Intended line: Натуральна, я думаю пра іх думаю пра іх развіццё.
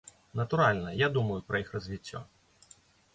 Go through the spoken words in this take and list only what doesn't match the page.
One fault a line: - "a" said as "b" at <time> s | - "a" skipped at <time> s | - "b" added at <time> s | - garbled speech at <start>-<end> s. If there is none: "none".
- "думаю пра іх" skipped at 1.7 s